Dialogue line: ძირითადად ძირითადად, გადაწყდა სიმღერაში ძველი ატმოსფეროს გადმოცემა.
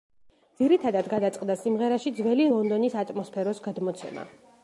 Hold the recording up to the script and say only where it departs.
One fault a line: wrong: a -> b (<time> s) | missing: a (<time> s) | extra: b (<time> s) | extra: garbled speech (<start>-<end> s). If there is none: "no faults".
missing: ძირითადად (1.1 s)
extra: ლონდონის (2.5 s)